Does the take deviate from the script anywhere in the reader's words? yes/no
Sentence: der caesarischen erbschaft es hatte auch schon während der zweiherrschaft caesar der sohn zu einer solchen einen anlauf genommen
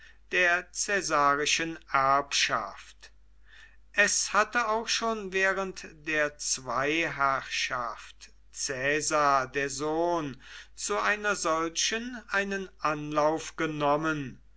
no